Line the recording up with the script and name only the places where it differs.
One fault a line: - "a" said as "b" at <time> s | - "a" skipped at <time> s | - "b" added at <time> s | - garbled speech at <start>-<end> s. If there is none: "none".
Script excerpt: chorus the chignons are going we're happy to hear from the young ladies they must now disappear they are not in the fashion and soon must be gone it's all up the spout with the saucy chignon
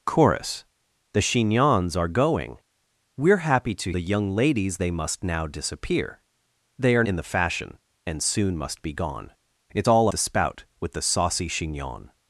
- "hear from" skipped at 3.9 s
- "not" skipped at 7.0 s
- "up" skipped at 10.1 s